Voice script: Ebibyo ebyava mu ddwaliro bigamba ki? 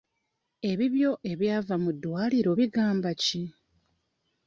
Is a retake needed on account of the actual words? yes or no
no